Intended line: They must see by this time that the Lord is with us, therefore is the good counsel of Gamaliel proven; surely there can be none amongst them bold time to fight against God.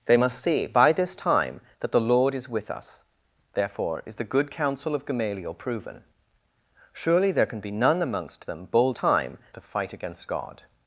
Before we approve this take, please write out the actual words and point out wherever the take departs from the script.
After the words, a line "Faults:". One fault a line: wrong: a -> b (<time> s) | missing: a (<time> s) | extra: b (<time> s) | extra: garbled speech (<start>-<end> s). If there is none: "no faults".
They must see by this time that the Lord is with us, therefore is the good counsel of Gamaliel proven; surely there can be none amongst them bold time to fight against God.
Faults:
no faults